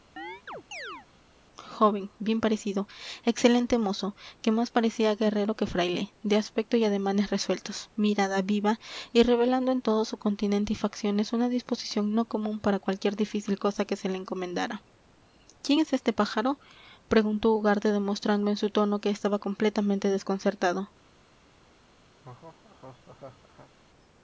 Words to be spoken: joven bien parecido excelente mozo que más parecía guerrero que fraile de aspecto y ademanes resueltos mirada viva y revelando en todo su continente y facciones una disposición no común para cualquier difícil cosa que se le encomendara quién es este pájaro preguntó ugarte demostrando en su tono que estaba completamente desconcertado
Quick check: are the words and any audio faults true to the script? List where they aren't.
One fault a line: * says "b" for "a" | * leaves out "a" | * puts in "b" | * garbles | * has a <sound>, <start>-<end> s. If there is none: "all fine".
* has a chirp, 0.2-1.1 s
* has a laugh, 22.2-23.7 s